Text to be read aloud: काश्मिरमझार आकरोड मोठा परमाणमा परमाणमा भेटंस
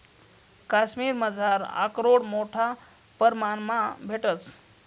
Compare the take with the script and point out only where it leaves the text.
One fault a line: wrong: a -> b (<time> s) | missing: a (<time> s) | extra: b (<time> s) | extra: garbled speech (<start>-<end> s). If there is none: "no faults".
missing: परमाणमा (3.8 s)